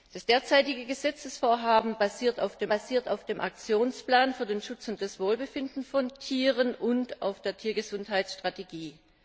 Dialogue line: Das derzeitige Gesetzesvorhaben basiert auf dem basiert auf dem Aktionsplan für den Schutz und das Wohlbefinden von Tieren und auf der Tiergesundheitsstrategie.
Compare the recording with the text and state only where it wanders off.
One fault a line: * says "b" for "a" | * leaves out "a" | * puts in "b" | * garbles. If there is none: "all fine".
all fine